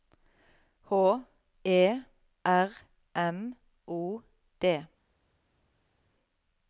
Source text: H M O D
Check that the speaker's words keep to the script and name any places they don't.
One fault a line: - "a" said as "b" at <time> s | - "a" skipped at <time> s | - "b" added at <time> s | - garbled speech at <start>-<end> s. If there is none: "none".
- "E R" added at 1.6 s